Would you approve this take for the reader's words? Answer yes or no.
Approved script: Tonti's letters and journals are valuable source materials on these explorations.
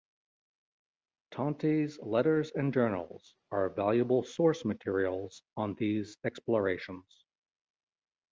yes